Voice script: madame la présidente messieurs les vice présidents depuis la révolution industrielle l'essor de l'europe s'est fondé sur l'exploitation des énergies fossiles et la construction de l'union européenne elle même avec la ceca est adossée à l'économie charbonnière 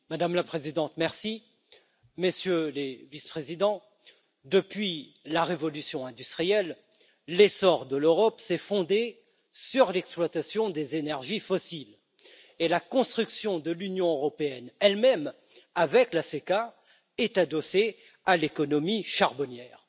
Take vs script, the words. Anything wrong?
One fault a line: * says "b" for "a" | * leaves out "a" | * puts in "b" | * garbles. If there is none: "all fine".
all fine